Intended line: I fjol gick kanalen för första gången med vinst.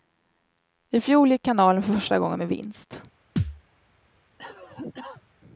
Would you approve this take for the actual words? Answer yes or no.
yes